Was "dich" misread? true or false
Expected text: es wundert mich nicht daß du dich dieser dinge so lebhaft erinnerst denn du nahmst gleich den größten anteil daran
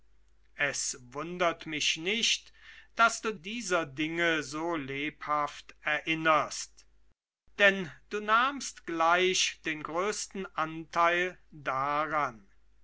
true